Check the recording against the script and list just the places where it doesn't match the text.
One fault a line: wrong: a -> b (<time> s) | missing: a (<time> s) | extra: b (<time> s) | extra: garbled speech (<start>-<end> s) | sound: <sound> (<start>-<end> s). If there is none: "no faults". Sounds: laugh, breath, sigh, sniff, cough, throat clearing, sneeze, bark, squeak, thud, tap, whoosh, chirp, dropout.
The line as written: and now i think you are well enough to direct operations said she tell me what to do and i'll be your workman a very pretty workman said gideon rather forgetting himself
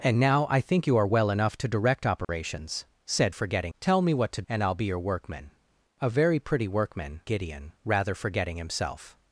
sound: dropout (2.2-2.3 s)
wrong: she -> forgetting (3.3 s)
missing: do (4.4 s)
missing: said (7.2 s)